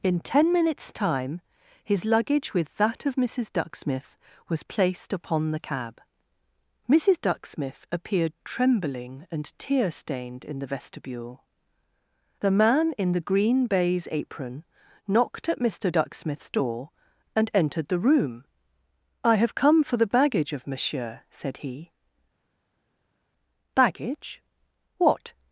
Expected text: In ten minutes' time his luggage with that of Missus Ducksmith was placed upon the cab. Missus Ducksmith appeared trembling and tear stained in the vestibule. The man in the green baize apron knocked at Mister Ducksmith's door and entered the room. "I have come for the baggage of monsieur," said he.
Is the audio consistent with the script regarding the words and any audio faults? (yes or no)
no